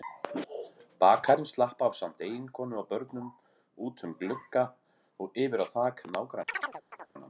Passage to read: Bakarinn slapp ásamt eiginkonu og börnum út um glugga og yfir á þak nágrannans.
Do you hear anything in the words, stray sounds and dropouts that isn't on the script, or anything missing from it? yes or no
yes